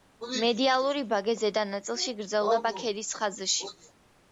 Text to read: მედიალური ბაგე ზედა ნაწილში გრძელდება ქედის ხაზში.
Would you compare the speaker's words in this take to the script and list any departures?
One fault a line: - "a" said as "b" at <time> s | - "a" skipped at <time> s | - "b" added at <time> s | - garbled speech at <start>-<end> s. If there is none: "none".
none